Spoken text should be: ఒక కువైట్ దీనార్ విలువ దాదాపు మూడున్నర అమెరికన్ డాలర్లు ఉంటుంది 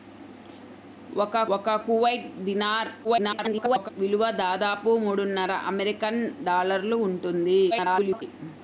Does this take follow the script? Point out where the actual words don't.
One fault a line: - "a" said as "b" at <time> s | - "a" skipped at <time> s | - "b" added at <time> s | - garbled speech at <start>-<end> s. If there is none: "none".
- "ఒక" added at 1.5 s
- garbled speech at 3.0-3.9 s
- garbled speech at 7.7-8.2 s